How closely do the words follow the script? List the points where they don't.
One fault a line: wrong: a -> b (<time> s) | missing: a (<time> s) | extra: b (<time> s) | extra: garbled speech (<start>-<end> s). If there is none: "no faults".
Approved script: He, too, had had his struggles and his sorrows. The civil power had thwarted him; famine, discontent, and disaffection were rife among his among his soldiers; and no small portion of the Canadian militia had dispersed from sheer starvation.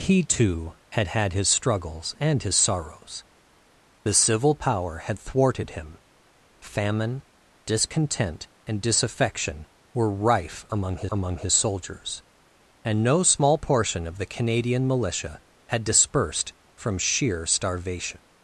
no faults